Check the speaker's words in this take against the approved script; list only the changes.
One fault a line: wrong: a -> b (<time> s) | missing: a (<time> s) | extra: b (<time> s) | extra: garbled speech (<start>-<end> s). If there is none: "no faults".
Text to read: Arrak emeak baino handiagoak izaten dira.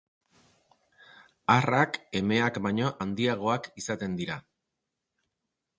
no faults